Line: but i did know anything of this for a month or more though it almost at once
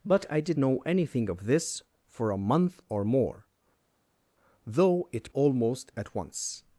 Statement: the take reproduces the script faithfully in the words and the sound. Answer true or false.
true